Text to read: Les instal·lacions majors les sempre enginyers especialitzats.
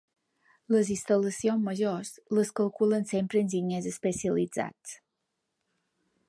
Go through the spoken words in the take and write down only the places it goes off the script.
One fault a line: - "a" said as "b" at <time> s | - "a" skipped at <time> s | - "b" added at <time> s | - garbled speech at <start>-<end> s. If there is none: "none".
- "calculen" added at 2.6 s